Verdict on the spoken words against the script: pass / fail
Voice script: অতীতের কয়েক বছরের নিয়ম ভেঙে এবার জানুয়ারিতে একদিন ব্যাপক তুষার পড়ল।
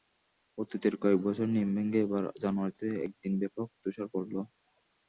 pass